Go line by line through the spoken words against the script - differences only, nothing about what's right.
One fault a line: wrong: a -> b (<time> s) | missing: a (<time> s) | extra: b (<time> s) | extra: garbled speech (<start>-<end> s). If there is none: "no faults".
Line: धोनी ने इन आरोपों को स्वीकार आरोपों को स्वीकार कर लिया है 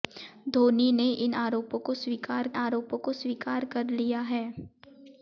no faults